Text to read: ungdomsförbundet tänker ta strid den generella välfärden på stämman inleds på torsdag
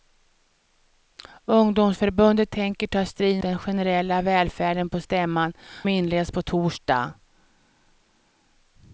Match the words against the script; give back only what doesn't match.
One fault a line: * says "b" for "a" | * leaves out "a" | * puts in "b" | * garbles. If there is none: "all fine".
all fine